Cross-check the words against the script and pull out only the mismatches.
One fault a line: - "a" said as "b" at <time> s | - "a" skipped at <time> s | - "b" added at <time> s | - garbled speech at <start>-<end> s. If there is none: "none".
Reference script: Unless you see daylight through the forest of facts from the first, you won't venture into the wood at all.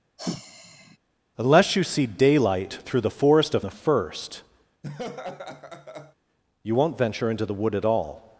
- "facts from" skipped at 3.6 s